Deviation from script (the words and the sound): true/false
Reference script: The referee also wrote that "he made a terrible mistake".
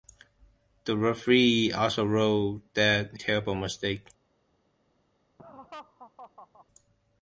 true